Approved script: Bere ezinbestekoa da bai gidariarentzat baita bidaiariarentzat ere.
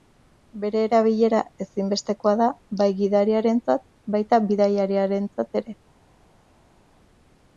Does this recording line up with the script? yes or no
no